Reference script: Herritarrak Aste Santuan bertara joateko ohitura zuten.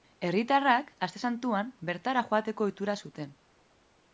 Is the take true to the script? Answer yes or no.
yes